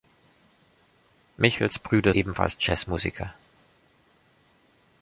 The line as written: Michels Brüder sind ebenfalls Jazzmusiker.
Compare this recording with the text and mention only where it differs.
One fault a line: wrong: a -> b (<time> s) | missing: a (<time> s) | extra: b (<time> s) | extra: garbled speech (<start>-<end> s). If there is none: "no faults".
missing: sind (2.1 s)